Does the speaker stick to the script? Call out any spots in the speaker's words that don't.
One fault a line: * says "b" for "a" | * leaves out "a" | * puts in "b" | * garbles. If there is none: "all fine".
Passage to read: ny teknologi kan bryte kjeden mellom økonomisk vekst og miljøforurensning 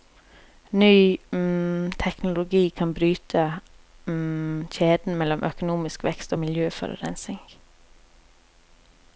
all fine